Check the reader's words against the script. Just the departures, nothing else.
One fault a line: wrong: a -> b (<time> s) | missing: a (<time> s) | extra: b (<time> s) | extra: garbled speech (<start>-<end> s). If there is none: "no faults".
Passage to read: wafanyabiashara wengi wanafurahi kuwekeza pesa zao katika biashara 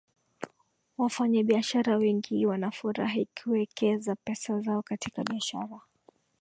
no faults